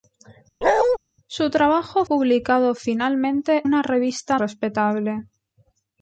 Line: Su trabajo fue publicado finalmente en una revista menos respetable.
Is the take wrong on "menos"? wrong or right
wrong